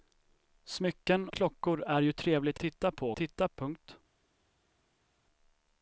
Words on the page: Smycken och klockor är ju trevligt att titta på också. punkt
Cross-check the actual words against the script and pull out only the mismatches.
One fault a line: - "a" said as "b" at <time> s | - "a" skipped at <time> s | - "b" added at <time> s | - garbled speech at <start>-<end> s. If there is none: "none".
- "och" skipped at 1.3 s
- "att" skipped at 2.6 s
- "också" said as "titta" at 3.1 s